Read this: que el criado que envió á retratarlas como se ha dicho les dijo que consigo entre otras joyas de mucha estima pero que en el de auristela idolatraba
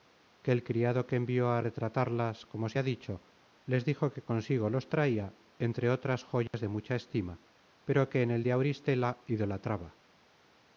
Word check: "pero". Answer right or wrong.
right